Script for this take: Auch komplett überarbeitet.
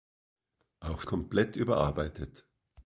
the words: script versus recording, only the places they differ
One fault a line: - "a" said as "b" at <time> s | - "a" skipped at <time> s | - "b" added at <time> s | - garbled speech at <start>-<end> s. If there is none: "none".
none